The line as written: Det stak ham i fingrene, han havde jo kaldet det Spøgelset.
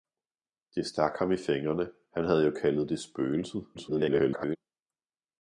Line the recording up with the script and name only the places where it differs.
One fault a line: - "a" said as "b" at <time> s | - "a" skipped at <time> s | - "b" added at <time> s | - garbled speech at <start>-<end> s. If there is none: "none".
- garbled speech at 3.7-4.6 s